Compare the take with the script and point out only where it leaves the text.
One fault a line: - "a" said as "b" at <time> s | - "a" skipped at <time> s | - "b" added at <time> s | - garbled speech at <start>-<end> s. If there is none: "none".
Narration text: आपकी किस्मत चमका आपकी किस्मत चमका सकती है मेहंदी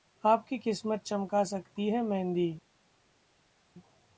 - "आपकी किस्मत चमका" skipped at 1.4 s